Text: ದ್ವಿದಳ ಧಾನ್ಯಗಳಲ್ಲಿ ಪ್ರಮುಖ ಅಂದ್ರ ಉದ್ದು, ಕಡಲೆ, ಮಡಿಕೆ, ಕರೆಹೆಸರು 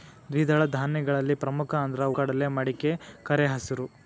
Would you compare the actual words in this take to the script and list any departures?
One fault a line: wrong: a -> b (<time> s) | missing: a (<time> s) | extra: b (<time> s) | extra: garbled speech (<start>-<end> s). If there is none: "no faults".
missing: ಉದ್ದು (2.0 s)